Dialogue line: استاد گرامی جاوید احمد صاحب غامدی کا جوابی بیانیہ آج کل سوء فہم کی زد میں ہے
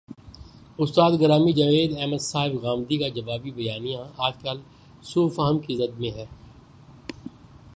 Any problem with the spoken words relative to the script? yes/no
no